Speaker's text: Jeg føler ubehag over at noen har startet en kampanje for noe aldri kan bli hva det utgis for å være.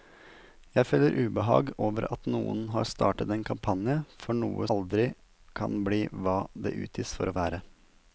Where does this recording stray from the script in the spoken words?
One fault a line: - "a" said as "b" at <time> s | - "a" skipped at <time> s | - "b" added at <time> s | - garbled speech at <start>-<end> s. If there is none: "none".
none